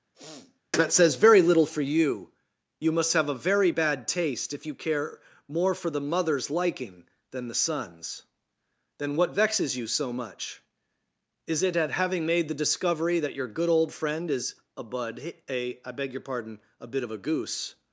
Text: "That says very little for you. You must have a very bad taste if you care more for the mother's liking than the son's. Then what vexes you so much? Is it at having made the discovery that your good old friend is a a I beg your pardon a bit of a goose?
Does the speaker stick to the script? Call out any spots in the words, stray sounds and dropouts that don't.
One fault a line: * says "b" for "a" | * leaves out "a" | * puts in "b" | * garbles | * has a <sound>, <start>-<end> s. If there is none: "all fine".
* has a sniff, 0.1-0.6 s
* puts in "bud"